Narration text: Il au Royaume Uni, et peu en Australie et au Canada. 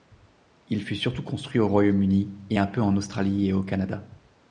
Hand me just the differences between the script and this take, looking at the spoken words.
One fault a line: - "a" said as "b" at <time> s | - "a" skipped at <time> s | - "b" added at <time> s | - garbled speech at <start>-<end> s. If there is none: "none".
- "fut surtout construit" added at 0.8 s
- "un" added at 2.6 s